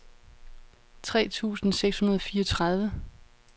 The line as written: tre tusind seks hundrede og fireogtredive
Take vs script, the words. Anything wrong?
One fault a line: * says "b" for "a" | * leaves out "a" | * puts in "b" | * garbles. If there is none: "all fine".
all fine